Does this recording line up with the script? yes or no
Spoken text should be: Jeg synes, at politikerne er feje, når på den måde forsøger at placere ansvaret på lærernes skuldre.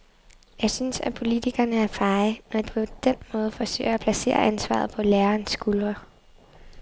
yes